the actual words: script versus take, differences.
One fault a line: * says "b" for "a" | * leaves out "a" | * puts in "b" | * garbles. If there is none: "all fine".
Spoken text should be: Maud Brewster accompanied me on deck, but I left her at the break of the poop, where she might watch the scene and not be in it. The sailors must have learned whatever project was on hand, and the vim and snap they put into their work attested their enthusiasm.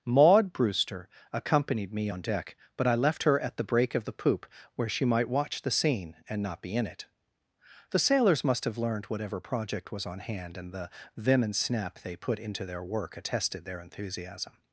all fine